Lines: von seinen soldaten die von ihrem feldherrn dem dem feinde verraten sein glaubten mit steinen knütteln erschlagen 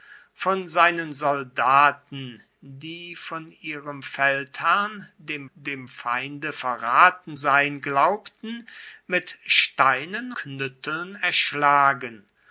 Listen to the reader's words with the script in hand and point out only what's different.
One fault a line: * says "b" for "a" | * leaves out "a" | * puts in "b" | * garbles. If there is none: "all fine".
all fine